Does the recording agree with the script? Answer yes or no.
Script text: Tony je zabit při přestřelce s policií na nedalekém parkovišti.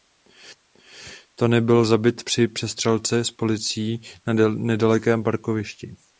no